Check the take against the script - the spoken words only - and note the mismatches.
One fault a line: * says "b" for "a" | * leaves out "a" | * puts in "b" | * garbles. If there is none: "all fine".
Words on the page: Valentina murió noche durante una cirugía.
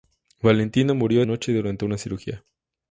all fine